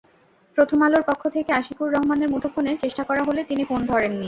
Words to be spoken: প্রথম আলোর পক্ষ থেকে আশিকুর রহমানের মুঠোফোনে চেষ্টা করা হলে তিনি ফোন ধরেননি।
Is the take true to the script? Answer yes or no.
yes